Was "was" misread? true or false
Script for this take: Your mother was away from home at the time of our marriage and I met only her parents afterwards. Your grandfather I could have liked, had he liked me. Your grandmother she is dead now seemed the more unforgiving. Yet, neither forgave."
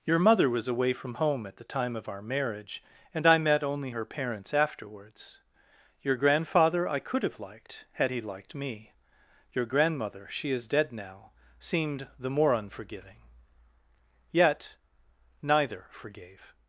false